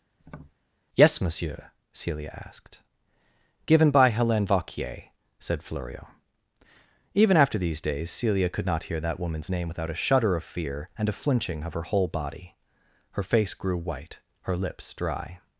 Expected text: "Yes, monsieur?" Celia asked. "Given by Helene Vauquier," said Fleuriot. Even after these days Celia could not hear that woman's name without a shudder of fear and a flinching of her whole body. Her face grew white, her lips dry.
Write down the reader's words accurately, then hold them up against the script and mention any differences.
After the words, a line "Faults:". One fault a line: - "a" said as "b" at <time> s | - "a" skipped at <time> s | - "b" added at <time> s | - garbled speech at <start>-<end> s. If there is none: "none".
"Yes, monsieur?" Celia asked. "Given by Helene Vauquier," said Fleuriot. Even after these days Celia could not hear that woman's name without a shudder of fear and a flinching of her whole body. Her face grew white, her lips dry.
Faults:
none